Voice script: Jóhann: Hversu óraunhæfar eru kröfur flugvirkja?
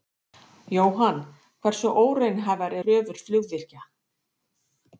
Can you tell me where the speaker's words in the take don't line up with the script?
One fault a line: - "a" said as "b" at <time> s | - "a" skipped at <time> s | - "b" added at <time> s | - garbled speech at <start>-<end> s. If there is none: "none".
- "eru" skipped at 2.8 s